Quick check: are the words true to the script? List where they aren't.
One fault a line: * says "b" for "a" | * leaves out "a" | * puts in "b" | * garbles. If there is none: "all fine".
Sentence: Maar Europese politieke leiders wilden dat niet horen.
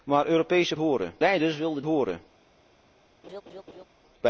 * says "horen" for "politieke"
* leaves out "dat niet"